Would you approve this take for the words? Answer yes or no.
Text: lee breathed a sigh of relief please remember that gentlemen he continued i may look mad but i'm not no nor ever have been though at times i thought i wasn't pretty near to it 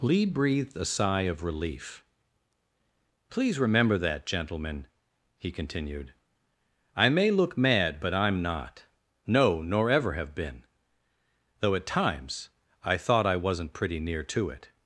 yes